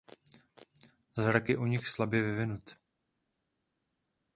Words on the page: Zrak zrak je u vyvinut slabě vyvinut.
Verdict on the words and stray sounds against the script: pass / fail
fail